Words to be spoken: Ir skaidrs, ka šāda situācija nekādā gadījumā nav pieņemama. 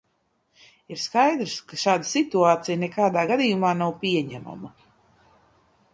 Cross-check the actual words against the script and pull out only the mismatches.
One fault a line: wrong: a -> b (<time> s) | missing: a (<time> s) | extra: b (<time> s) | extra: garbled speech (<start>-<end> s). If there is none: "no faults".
no faults